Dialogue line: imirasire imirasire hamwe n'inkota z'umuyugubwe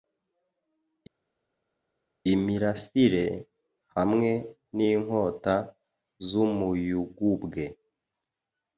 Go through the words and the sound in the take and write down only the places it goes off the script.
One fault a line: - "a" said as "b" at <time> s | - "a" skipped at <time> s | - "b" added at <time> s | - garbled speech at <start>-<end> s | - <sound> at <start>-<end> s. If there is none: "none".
- "imirasire" skipped at 3.3 s